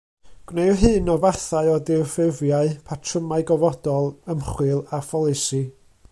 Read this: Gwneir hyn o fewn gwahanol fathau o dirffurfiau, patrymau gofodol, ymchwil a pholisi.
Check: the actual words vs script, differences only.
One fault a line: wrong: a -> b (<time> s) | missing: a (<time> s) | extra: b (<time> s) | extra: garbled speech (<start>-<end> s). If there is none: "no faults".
missing: fewn gwahanol (1.2 s)